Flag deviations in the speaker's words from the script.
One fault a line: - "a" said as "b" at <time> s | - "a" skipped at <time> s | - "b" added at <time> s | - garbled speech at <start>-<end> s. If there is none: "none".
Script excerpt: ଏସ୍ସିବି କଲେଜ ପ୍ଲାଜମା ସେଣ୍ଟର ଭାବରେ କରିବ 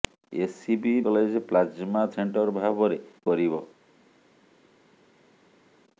none